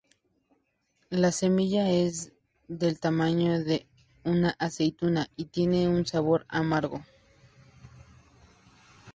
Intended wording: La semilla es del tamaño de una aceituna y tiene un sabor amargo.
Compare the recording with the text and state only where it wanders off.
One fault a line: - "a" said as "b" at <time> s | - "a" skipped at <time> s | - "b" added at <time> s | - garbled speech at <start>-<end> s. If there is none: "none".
none